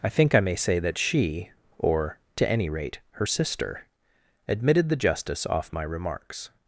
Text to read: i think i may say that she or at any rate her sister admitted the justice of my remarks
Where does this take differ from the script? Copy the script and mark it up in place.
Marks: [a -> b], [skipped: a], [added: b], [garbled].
i think i may say that she or [at -> to] any rate her sister admitted the justice [of -> off] my remarks